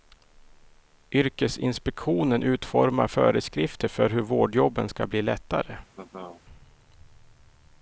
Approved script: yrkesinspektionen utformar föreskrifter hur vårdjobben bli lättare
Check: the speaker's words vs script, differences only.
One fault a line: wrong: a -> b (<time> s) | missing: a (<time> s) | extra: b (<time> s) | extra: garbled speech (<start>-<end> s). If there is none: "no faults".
extra: för (3.9 s)
extra: ska (4.9 s)